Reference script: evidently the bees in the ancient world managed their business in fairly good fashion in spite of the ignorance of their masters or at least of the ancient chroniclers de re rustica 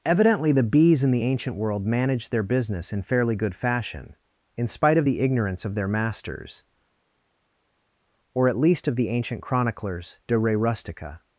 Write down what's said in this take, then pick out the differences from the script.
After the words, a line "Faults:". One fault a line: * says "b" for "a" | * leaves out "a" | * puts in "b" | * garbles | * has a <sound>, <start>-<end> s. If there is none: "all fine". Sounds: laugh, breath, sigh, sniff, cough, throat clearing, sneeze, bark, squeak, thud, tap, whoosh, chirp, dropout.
evidently the bees in the ancient world managed their business in fairly good fashion in spite of the ignorance of their masters or at least of the ancient chroniclers de re rustica
Faults:
all fine